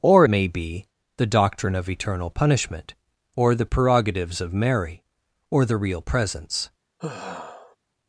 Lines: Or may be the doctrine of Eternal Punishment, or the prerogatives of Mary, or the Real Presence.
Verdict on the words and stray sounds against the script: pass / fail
fail